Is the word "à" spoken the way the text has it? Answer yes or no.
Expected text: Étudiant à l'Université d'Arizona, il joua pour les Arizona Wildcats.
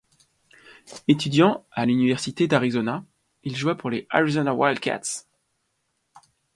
yes